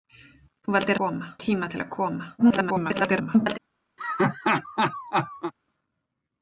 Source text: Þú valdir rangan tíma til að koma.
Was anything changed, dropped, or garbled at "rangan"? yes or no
yes